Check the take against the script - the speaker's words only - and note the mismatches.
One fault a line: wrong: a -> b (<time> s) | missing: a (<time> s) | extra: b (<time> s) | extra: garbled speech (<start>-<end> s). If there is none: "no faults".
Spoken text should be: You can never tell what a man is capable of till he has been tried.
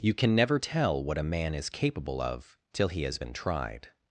no faults